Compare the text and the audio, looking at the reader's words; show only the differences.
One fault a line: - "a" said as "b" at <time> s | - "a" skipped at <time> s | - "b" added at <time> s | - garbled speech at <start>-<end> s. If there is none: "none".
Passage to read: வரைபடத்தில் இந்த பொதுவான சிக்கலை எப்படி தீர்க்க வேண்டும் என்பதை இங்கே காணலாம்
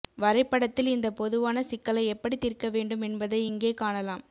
none